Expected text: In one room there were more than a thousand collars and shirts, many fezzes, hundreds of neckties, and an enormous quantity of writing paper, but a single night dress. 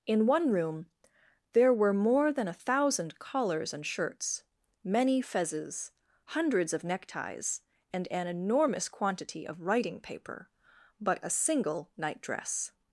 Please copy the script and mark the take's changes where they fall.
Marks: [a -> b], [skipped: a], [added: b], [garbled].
In one room there were more than a thousand collars and shirts, many fezzes, hundreds of neckties, and an enormous quantity of writing paper, but a single night dress.